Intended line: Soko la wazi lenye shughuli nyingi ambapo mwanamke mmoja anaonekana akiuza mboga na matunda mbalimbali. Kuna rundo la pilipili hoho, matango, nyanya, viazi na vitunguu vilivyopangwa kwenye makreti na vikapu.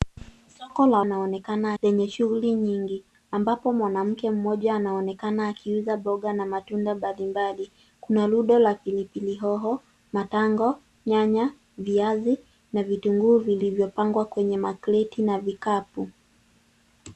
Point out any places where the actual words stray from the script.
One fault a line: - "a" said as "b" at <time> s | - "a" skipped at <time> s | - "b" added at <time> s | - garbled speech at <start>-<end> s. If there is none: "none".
- "wazi" said as "anaonekana" at 1.0 s